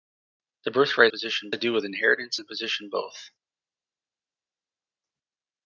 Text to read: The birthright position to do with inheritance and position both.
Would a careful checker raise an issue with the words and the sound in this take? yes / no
no